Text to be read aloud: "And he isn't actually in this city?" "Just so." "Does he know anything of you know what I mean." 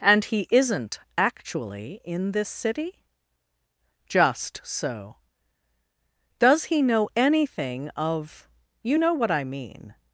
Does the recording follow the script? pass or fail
pass